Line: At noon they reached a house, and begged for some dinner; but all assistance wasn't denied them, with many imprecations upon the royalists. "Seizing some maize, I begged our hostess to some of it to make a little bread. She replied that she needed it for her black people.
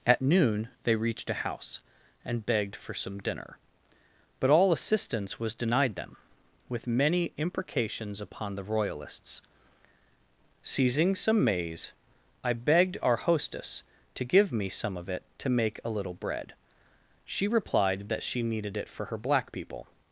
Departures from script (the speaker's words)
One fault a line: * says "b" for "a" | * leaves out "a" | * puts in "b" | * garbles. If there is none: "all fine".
* says "was" for "wasn't"
* puts in "give me"